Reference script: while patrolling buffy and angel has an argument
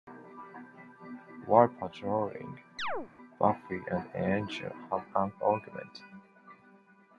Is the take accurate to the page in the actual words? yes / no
no